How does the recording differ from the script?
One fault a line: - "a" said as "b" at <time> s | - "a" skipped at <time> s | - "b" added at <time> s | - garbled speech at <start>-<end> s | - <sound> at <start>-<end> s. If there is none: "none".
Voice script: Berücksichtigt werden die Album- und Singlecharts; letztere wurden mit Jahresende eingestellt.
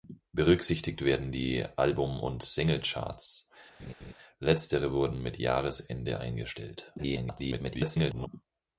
- laugh at 3.8-4.1 s
- garbled speech at 7.0-8.3 s